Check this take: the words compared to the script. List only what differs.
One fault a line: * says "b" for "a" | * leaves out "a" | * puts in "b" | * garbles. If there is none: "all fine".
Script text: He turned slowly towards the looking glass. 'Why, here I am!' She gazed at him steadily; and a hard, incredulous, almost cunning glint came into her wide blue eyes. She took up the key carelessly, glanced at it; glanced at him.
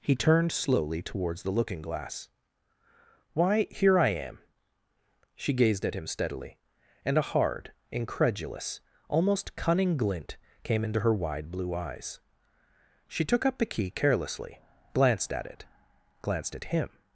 all fine